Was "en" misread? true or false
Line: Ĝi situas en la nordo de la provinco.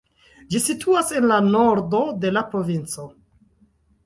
false